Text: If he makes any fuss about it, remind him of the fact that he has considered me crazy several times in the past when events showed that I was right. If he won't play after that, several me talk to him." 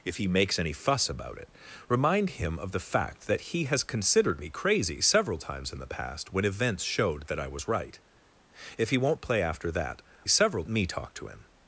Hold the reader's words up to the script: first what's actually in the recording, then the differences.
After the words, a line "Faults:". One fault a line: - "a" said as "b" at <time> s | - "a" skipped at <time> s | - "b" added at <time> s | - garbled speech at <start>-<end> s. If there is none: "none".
If he makes any fuss about it, remind him of the fact that he has considered me crazy several times in the past when events showed that I was right. If he won't play after that, several me talk to him."
Faults:
none